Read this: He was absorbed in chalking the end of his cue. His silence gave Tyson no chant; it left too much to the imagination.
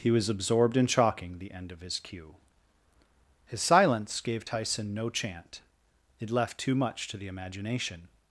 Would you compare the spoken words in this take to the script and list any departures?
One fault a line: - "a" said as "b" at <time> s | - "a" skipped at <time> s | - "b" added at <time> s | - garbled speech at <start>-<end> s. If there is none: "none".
none